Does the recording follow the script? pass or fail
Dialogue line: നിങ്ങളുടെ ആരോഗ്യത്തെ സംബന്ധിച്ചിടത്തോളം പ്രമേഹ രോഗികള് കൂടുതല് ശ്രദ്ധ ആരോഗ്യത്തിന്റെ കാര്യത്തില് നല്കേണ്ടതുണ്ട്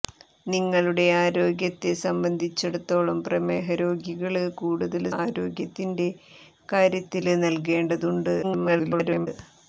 fail